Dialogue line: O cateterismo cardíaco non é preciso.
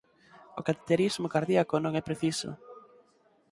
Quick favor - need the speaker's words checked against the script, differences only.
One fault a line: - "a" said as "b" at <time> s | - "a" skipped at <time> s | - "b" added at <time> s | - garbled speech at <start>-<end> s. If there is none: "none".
none